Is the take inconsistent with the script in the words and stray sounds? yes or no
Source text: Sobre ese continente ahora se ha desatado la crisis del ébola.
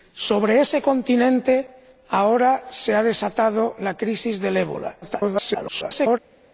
yes